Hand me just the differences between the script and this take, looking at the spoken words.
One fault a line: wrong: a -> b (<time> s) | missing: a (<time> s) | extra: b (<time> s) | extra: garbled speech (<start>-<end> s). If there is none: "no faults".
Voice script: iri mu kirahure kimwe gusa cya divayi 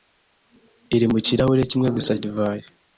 missing: cya (2.1 s)